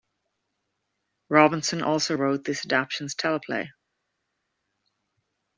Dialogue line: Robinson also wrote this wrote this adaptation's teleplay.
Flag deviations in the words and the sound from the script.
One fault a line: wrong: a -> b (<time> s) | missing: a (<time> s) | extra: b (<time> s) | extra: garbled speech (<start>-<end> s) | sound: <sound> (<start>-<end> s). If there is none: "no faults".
missing: wrote this (2.6 s)